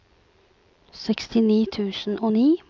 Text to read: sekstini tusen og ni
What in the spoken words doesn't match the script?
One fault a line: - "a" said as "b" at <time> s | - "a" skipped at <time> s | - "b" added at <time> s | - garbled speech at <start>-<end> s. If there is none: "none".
none